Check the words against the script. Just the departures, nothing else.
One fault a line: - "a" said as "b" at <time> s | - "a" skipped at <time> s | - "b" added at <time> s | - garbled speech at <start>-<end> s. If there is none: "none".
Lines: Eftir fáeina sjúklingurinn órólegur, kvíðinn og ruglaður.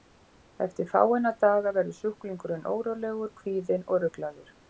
- "daga verður" added at 1.4 s